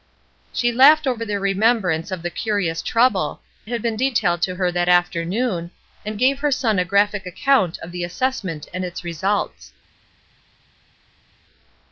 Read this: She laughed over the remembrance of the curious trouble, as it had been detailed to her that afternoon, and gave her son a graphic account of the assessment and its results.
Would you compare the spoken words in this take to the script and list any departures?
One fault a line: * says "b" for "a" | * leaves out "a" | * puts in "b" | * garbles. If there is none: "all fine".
* leaves out "as it"